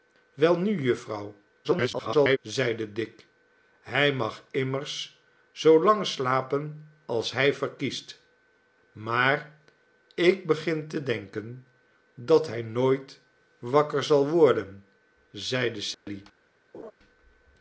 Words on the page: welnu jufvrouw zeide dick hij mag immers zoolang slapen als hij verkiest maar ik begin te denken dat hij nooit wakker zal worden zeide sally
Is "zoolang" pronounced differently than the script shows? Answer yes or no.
no